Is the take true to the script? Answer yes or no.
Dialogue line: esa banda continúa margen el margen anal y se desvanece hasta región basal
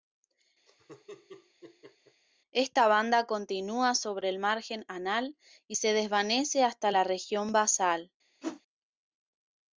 no